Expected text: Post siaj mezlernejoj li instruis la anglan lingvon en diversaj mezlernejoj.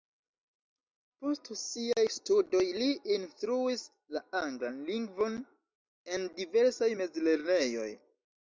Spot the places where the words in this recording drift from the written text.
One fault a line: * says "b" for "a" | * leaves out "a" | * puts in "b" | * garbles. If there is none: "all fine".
* says "studoj" for "mezlernejoj"